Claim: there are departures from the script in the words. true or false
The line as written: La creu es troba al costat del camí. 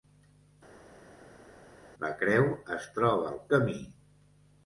true